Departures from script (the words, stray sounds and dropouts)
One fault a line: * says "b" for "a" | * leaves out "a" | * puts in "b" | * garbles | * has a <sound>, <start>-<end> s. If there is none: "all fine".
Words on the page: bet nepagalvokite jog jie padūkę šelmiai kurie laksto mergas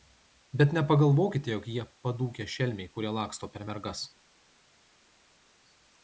* puts in "per"